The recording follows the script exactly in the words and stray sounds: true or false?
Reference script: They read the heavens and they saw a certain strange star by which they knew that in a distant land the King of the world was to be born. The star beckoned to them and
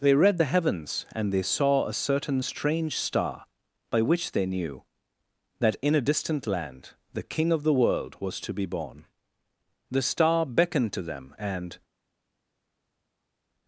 true